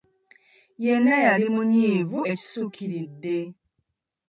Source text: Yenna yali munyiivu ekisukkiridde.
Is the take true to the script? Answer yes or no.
yes